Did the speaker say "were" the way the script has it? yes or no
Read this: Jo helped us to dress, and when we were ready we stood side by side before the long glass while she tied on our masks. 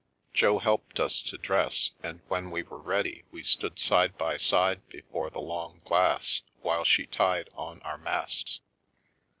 yes